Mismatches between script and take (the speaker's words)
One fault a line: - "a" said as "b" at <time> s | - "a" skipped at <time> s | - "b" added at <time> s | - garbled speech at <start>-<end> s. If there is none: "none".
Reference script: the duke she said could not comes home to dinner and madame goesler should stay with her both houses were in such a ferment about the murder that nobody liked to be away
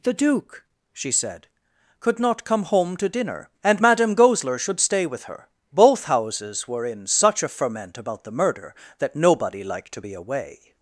- "comes" said as "come" at 2.4 s